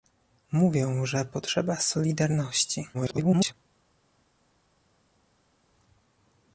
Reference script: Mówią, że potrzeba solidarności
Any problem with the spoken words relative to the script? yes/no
yes